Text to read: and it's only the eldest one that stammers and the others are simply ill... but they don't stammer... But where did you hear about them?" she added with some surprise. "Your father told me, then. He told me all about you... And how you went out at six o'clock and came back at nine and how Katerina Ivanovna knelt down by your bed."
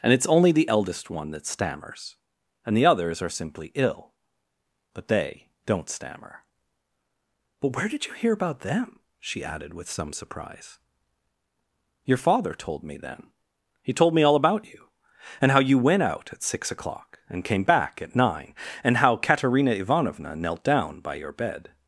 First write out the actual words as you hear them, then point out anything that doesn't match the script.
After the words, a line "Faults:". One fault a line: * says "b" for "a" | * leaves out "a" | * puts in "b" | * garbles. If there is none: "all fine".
and it's only the eldest one that stammers and the others are simply ill... but they don't stammer... But where did you hear about them?" she added with some surprise. "Your father told me, then. He told me all about you... And how you went out at six o'clock and came back at nine and how Katerina Ivanovna knelt down by your bed."
Faults:
all fine